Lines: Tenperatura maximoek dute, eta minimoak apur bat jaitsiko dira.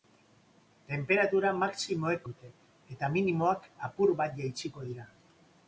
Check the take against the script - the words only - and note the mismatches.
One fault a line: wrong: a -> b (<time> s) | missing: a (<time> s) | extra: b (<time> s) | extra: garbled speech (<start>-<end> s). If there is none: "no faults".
no faults